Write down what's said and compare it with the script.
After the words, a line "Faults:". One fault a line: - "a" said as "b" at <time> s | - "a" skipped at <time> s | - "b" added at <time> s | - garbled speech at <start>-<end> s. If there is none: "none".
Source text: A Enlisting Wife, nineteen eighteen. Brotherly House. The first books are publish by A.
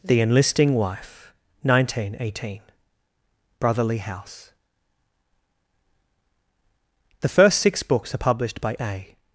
The Enlisting Wife, nineteen eighteen. Brotherly House. The first six books are published by A.
Faults:
- "A" said as "The" at 0.0 s
- "six" added at 7.6 s
- "publish" said as "published" at 8.2 s